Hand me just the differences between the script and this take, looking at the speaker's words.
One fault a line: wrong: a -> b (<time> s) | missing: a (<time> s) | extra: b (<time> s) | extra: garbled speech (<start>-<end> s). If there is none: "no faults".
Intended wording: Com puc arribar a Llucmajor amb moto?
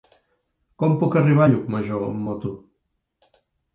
no faults